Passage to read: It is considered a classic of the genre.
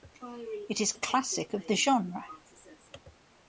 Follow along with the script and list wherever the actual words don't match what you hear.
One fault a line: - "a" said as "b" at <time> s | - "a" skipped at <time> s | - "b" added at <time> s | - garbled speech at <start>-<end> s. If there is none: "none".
- "considered" skipped at 0.9 s